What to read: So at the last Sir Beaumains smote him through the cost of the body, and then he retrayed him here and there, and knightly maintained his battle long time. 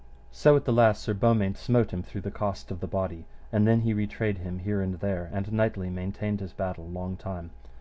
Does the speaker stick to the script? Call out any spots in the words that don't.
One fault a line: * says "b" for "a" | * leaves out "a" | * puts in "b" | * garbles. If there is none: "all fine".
all fine